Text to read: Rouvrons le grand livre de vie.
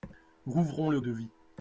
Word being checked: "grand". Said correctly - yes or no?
no